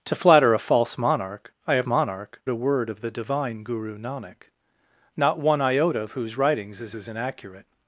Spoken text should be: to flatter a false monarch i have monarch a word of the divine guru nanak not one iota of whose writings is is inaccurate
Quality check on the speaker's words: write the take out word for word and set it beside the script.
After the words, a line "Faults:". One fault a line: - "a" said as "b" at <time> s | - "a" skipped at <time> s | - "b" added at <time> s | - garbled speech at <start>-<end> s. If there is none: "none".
to flatter a false monarch i have monarch a word of the divine guru nanak not one iota of whose writings is is inaccurate
Faults:
none